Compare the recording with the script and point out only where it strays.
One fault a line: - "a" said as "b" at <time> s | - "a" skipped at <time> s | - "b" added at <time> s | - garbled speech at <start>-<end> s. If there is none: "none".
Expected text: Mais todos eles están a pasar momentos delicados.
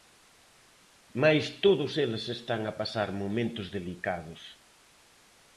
none